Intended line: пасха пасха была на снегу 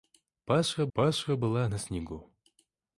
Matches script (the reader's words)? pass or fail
pass